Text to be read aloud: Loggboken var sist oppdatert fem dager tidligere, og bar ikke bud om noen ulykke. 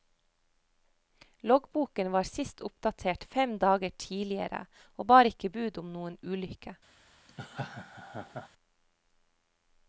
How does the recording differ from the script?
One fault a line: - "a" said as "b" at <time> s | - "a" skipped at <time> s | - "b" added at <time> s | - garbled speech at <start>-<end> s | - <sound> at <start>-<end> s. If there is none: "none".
- laugh at 7.3-8.5 s